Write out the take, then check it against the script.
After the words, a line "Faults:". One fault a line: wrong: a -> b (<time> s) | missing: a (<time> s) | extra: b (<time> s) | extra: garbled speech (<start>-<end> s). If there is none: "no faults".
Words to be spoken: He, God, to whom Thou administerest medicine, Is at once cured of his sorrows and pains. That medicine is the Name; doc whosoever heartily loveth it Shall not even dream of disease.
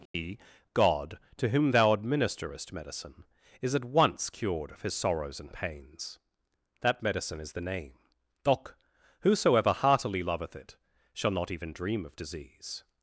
He, God, to whom Thou administerest medicine, Is at once cured of his sorrows and pains. That medicine is the Name; doc whosoever heartily loveth it Shall not even dream of disease.
Faults:
no faults